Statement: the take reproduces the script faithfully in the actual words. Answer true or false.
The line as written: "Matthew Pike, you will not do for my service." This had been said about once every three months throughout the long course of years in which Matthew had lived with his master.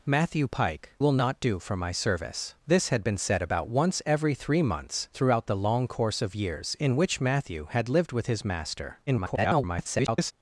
false